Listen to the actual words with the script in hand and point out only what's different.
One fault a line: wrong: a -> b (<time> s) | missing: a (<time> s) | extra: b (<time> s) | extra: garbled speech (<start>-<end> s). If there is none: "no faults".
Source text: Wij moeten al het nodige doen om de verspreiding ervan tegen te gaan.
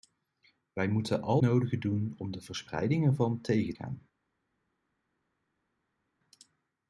missing: het (1.4 s)
missing: te (3.7 s)